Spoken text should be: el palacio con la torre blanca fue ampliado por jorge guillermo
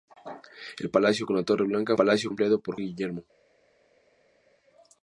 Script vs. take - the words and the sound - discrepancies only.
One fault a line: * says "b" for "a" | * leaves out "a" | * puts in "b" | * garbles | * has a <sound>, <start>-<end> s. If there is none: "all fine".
* says "palacio" for "fue"
* leaves out "jorge"